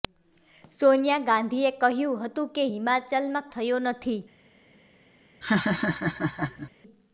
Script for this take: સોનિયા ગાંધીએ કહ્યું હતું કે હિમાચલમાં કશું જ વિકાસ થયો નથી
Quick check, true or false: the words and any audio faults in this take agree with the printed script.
false